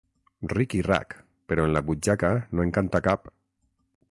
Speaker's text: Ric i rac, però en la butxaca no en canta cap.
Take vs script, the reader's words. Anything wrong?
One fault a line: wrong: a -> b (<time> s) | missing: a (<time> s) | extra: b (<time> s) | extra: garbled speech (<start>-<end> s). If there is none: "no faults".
no faults